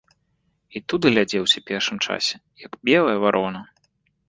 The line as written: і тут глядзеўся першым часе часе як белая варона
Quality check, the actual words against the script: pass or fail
fail